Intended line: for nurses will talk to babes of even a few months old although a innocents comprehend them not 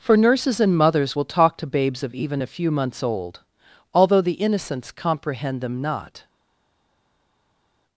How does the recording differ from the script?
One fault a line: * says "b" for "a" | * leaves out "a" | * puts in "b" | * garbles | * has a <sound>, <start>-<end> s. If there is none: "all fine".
* puts in "and mothers"
* says "the" for "a"